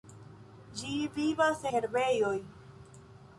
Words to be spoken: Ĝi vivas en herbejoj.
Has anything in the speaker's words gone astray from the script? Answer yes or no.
yes